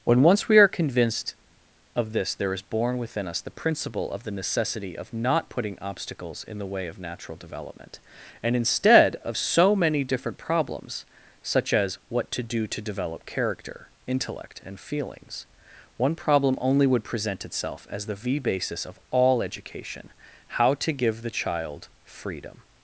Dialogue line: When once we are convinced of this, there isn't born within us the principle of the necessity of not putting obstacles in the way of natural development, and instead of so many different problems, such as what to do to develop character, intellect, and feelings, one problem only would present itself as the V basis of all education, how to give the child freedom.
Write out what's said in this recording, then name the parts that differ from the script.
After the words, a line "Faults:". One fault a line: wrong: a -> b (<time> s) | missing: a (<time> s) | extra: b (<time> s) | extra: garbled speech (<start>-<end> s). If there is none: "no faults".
When once we are convinced of this, there is born within us the principle of the necessity of not putting obstacles in the way of natural development, and instead of so many different problems, such as what to do to develop character, intellect, and feelings, one problem only would present itself as the V basis of all education, how to give the child freedom.
Faults:
wrong: isn't -> is (2.5 s)